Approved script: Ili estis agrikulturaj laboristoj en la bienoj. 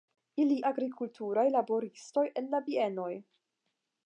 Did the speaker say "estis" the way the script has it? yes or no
no